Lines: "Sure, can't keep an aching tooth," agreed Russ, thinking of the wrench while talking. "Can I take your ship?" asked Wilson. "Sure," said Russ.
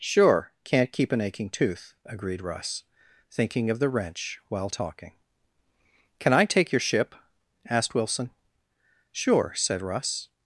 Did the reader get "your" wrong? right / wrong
right